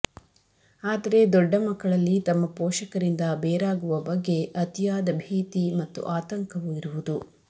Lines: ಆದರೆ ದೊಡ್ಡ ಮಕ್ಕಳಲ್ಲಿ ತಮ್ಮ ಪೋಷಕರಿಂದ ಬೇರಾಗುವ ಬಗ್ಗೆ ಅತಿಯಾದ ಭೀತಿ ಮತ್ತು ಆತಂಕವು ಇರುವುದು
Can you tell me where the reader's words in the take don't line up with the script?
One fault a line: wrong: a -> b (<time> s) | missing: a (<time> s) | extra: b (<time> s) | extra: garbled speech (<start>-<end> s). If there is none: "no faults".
no faults